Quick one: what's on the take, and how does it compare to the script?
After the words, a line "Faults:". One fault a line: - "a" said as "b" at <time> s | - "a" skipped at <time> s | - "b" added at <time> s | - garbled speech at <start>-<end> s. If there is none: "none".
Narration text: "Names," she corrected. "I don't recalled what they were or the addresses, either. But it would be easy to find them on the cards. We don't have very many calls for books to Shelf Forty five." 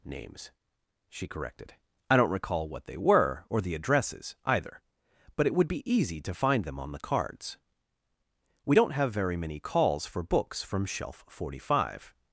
"Names," she corrected. "I don't recall what they were or the addresses, either. But it would be easy to find them on the cards. We don't have very many calls for books from Shelf Forty five."
Faults:
- "recalled" said as "recall" at 2.3 s
- "to" said as "from" at 10.6 s